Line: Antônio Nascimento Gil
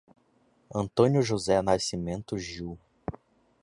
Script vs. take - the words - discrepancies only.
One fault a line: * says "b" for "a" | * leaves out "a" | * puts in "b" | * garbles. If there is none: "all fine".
* puts in "José"